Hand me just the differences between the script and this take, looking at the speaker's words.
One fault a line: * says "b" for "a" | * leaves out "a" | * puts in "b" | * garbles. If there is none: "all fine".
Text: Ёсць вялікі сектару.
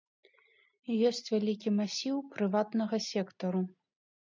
* puts in "масіў прыватнага"